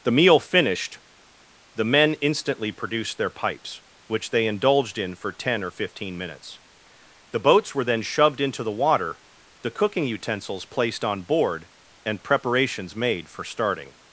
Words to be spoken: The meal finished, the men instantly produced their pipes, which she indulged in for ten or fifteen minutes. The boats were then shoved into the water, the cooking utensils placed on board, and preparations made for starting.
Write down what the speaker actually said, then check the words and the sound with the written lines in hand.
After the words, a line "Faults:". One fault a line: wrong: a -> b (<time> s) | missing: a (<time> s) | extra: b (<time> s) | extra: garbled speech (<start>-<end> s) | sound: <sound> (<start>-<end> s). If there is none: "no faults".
The meal finished, the men instantly produced their pipes, which they indulged in for ten or fifteen minutes. The boats were then shoved into the water, the cooking utensils placed on board, and preparations made for starting.
Faults:
wrong: she -> they (4.3 s)